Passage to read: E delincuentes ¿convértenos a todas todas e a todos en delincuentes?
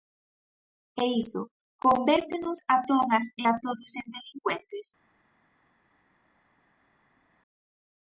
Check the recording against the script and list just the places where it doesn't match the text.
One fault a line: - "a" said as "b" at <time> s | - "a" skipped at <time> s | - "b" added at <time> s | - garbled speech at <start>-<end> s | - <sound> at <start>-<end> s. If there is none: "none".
- "delincuentes" said as "iso" at 1.2 s
- "todas" skipped at 3.2 s